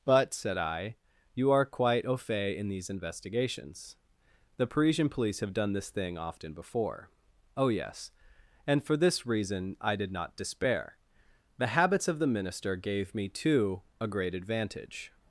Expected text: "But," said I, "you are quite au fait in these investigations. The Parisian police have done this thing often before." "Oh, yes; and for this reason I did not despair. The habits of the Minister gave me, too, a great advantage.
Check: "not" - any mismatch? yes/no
no